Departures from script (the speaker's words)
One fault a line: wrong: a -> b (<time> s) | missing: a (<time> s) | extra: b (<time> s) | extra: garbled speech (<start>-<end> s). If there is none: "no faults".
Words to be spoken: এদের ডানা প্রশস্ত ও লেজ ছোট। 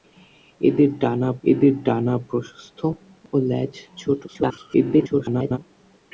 extra: এদের ডানা (1.4 s)
extra: garbled speech (4.3-5.6 s)